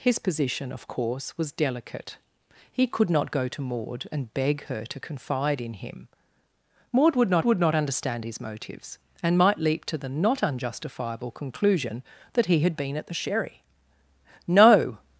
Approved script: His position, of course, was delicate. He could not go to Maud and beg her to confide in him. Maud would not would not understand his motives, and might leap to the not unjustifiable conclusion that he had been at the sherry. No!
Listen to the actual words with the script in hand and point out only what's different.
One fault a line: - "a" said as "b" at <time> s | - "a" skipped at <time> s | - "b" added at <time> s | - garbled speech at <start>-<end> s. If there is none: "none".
none